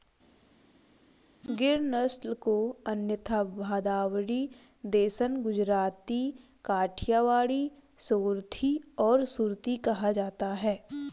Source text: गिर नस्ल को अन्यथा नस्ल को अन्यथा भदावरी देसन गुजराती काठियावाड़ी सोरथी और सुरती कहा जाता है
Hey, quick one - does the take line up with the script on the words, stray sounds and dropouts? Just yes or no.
no